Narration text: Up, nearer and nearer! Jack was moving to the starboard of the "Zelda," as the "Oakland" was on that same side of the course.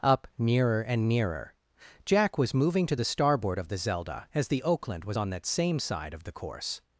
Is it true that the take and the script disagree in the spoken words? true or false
false